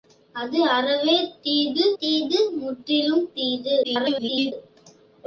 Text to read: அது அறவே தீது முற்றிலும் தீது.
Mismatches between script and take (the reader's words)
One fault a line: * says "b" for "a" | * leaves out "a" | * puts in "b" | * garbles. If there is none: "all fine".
* puts in "தீது"
* garbles